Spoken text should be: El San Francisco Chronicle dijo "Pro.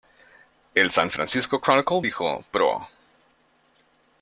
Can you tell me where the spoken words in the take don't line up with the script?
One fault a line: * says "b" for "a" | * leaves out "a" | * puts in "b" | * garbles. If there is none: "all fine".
all fine